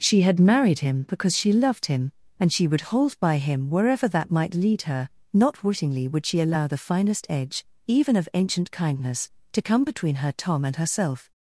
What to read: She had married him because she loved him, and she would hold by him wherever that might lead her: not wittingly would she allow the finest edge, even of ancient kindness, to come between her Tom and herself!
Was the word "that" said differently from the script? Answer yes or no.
no